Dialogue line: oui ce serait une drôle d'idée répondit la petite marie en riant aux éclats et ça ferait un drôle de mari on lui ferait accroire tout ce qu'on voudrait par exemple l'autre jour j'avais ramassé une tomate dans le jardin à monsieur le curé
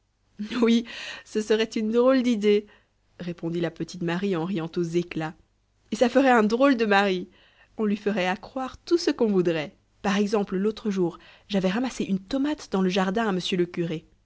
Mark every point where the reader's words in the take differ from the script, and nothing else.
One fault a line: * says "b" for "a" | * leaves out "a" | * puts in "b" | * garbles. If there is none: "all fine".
all fine